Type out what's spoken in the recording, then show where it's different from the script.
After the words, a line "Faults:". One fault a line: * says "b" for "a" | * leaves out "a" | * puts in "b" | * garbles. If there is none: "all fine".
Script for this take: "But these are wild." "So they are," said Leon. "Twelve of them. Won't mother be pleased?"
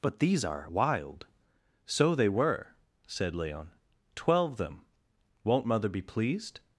"But these are wild." "So they were," said Leon. "Twelve them. Won't mother be pleased?"
Faults:
* says "were" for "are"
* leaves out "of"